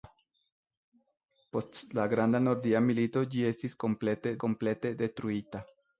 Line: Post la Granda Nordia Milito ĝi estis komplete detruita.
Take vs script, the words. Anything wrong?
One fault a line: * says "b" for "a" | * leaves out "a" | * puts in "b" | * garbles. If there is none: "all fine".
* puts in "komplete"